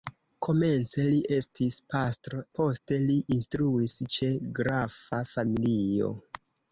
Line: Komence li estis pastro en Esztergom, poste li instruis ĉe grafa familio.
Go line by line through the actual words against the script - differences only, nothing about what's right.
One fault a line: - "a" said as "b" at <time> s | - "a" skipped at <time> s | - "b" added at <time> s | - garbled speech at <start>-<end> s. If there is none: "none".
- "en Esztergom" skipped at 2.4 s